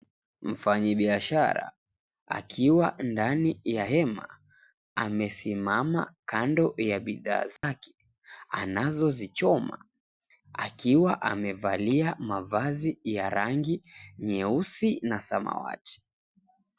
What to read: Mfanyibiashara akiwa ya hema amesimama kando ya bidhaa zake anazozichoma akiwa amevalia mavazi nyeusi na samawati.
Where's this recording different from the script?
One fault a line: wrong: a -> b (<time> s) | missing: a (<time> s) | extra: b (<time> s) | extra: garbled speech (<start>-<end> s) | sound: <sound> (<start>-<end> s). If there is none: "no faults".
extra: ndani (3.0 s)
sound: dropout (7.6-7.6 s)
extra: ya rangi (13.0 s)